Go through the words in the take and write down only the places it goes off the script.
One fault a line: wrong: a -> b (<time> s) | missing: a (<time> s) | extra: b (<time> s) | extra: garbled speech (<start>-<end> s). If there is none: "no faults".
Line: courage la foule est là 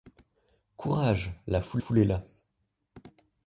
extra: foule (1.8 s)